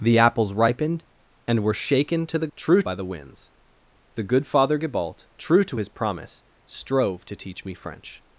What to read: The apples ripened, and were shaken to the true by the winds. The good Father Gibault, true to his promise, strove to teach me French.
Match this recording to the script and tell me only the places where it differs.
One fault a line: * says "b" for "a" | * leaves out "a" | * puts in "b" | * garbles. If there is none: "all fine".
all fine